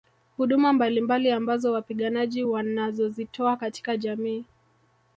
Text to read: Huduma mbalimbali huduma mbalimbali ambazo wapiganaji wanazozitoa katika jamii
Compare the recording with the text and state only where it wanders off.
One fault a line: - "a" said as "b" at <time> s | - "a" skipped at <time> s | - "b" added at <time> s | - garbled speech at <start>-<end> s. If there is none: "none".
- "huduma mbalimbali" skipped at 1.3 s